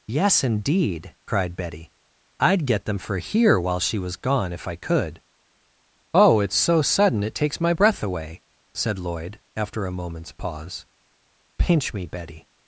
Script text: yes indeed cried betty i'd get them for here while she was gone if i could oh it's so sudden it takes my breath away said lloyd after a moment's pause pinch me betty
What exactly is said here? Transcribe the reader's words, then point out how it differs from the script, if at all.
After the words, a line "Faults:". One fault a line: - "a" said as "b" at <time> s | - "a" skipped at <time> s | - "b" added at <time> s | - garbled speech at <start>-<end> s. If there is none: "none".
yes indeed cried betty i'd get them for here while she was gone if i could oh it's so sudden it takes my breath away said lloyd after a moment's pause pinch me betty
Faults:
none